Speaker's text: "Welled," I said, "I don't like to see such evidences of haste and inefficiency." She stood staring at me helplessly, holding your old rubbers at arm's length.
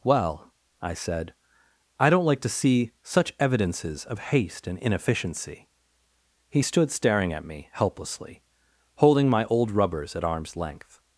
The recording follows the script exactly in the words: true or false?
false